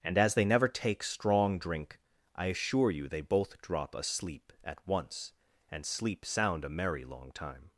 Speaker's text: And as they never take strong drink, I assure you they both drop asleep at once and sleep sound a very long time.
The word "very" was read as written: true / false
false